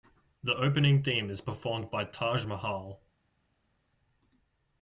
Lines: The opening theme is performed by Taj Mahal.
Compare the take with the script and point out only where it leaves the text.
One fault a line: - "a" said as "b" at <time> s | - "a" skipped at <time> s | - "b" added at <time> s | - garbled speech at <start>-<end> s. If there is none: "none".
none